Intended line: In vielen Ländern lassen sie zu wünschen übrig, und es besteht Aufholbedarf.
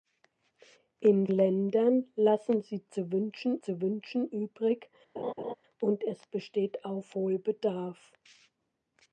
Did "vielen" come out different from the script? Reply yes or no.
yes